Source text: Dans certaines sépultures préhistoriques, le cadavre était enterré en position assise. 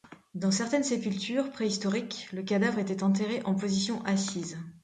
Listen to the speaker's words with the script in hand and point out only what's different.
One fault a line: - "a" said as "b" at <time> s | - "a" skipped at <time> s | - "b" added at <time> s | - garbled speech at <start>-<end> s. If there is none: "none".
none